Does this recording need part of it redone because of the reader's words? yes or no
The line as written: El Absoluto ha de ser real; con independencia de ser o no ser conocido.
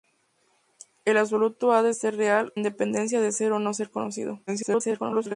yes